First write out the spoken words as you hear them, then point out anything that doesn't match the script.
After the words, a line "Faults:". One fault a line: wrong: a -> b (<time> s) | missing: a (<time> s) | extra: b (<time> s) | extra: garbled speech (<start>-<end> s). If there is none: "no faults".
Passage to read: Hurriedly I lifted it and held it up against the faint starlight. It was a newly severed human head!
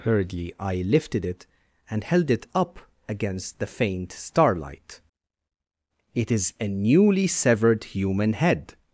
Hurriedly I lifted it and held it up against the faint starlight. It is a newly severed human head!
Faults:
wrong: was -> is (6.3 s)